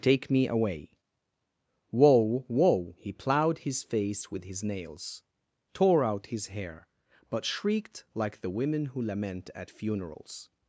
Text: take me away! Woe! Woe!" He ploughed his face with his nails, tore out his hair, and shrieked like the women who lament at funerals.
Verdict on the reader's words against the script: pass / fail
fail